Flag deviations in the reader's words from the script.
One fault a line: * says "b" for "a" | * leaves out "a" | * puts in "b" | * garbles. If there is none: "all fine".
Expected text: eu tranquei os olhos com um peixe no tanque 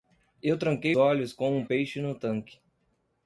* leaves out "os"